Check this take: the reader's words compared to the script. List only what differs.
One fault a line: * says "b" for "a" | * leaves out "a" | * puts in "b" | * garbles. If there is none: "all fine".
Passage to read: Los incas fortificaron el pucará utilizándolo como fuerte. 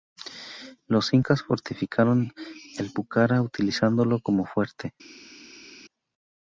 all fine